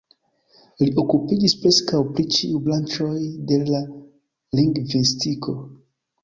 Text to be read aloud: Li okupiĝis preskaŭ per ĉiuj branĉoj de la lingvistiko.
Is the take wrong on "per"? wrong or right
wrong